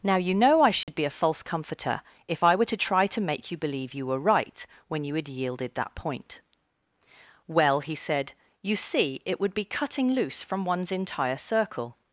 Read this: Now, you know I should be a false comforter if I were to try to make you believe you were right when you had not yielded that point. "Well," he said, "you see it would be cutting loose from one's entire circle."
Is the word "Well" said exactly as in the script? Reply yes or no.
yes